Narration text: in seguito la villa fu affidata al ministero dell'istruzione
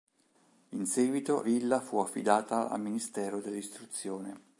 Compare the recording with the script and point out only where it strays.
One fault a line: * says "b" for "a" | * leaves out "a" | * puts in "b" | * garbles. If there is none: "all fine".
* leaves out "la"